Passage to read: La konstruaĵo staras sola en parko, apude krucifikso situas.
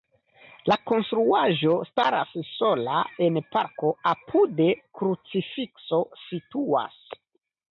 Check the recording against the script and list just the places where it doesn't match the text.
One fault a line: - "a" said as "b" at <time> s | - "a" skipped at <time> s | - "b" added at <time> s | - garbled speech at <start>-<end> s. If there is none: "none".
none